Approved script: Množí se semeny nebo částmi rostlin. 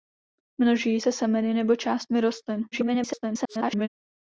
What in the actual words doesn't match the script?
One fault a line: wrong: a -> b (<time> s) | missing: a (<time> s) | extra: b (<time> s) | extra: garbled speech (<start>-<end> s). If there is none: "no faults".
extra: garbled speech (2.7-3.9 s)